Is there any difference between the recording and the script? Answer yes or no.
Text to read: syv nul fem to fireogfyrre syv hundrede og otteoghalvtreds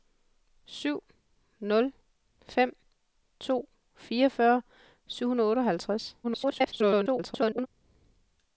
yes